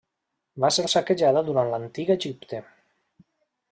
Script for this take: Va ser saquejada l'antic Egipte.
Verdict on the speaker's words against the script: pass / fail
fail